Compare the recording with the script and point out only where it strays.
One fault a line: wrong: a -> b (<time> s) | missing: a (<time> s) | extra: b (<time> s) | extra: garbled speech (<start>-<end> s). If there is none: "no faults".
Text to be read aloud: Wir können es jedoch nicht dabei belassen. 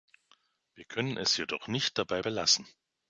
no faults